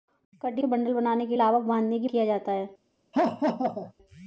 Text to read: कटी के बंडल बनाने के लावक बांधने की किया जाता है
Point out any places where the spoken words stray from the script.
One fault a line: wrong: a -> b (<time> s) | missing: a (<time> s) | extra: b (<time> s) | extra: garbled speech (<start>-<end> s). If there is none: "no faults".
no faults